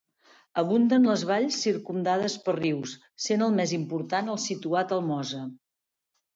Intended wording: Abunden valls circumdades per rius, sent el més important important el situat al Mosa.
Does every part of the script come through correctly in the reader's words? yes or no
no